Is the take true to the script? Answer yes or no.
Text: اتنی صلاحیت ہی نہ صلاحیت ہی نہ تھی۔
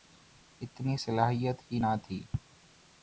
no